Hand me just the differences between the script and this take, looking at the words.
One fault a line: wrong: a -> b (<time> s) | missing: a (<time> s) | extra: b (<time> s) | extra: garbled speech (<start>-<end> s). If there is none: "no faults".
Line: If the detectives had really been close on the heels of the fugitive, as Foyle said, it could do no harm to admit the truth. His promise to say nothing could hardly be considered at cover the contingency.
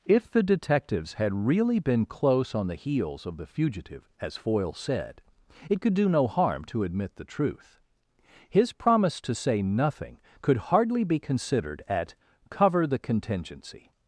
no faults